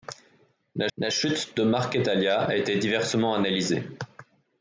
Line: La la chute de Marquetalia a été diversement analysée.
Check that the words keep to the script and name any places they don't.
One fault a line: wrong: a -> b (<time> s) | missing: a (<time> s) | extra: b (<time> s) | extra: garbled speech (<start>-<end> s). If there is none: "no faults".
no faults